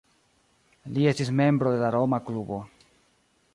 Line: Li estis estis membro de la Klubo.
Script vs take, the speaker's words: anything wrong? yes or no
yes